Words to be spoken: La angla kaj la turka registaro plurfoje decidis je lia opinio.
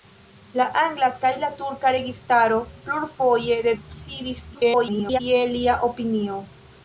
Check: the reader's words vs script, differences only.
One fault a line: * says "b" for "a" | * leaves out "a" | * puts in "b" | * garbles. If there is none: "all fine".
* garbles